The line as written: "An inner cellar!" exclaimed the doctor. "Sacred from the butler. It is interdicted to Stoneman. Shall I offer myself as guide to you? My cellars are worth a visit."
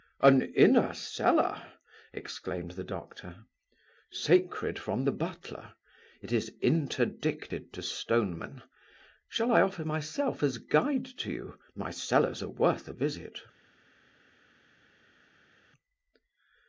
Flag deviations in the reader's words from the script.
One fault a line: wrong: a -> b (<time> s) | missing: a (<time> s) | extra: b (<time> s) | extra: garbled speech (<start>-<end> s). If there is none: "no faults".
no faults